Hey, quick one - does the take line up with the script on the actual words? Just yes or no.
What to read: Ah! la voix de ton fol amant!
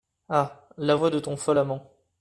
yes